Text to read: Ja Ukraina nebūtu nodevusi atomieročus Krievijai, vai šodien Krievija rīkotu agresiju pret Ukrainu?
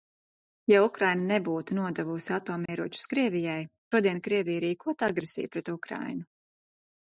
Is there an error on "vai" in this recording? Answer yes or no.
yes